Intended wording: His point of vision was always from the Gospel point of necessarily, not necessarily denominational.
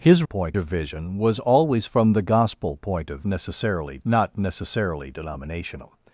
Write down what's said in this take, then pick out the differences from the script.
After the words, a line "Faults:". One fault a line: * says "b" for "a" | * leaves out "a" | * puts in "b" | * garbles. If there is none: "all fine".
His point of vision was always from the Gospel point of necessarily, not necessarily denominational.
Faults:
all fine